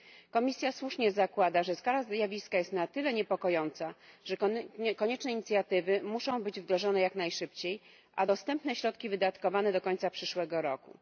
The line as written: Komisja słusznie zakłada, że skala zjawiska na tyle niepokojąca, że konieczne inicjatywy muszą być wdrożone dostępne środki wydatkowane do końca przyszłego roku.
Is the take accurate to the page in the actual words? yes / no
no